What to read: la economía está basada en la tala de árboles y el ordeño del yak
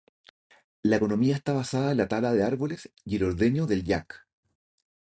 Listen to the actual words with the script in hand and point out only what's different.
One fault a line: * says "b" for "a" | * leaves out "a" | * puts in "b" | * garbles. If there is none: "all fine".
all fine